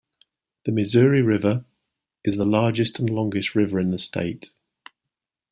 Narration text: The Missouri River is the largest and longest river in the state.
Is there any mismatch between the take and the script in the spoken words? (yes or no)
no